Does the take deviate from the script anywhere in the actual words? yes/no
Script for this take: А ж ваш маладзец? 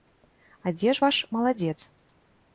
yes